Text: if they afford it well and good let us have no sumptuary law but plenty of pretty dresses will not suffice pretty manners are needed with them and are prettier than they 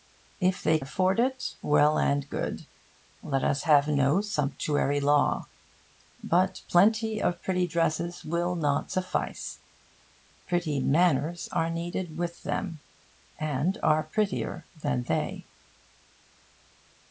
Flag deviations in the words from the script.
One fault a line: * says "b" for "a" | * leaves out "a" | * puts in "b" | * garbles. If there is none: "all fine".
all fine